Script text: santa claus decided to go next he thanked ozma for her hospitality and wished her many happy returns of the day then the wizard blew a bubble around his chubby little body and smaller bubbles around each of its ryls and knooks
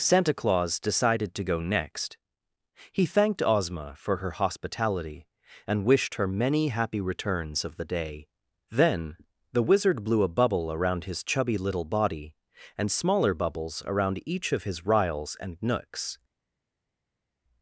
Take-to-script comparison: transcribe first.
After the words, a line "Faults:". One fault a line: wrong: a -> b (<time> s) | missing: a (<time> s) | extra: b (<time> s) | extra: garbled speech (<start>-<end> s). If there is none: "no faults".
santa claus decided to go next he thanked ozma for her hospitality and wished her many happy returns of the day then the wizard blew a bubble around his chubby little body and smaller bubbles around each of his ryls and knooks
Faults:
wrong: its -> his (14.6 s)